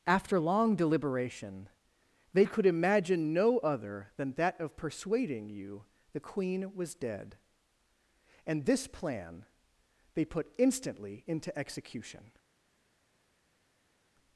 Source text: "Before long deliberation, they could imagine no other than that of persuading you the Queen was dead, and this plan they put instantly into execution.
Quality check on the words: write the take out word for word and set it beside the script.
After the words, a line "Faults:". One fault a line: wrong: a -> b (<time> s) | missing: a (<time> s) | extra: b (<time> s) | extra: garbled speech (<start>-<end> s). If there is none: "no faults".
"After long deliberation, they could imagine no other than that of persuading you the Queen was dead, and this plan they put instantly into execution.
Faults:
wrong: Before -> After (0.1 s)